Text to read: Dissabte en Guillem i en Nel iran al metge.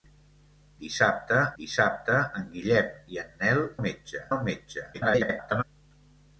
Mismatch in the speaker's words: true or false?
true